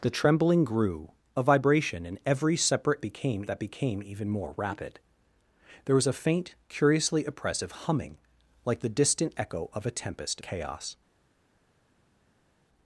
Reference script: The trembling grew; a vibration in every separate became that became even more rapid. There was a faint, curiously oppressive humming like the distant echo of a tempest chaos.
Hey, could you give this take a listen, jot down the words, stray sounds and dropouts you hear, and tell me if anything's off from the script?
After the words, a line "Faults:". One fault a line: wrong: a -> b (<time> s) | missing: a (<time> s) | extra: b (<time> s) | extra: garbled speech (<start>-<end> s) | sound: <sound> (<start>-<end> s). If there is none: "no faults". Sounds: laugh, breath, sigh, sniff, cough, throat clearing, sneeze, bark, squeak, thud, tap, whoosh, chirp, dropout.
The trembling grew; a vibration in every separate became that became even more rapid. There was a faint, curiously oppressive humming like the distant echo of a tempest chaos.
Faults:
no faults